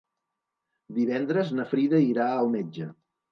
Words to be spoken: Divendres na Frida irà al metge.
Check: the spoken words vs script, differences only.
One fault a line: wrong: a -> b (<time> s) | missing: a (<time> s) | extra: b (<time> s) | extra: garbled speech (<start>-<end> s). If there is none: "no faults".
no faults